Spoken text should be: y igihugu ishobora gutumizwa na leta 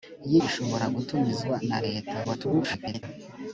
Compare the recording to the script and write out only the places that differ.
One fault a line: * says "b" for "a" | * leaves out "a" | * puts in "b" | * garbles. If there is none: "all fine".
* leaves out "igihugu"
* garbles